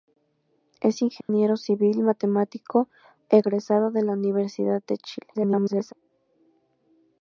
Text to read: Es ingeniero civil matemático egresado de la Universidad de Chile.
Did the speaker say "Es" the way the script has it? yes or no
yes